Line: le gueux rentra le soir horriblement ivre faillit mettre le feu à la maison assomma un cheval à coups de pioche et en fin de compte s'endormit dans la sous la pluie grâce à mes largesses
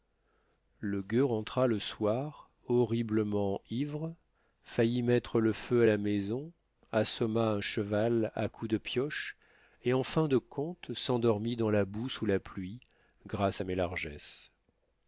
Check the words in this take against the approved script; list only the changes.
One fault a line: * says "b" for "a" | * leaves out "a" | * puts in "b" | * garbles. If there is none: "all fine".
* puts in "boue"